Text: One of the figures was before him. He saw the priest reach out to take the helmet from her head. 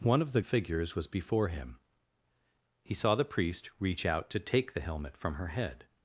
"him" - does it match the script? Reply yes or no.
yes